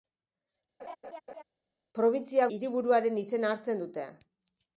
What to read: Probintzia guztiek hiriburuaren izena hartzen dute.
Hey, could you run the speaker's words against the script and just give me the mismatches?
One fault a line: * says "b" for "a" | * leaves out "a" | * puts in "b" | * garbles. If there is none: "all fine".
* leaves out "guztiek"